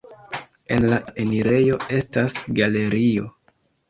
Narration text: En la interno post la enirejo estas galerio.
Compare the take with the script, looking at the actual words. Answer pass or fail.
fail